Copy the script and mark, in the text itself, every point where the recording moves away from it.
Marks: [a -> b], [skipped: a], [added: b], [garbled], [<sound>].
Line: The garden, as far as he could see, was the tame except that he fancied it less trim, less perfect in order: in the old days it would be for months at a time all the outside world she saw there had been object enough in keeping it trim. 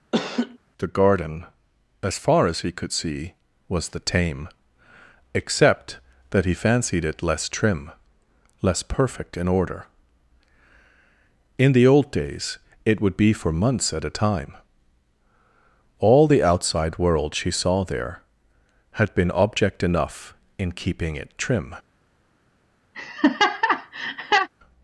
[laugh] The garden, as far as he could see, was the tame except that he fancied it less trim, less perfect in order: in the old days it would be for months at a time all the outside world she saw there had been object enough in keeping it trim. [laugh]